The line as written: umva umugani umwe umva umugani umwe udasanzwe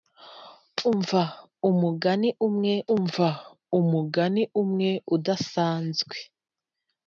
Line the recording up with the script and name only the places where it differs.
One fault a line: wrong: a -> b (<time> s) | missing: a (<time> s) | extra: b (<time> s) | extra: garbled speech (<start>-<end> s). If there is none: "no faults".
no faults